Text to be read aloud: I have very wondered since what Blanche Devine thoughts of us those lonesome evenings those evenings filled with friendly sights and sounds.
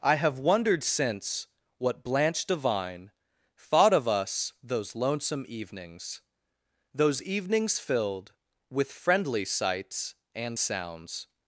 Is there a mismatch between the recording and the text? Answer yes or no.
yes